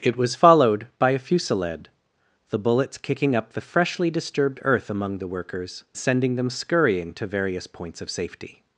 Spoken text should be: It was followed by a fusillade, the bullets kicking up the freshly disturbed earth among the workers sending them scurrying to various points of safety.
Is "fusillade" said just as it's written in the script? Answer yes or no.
yes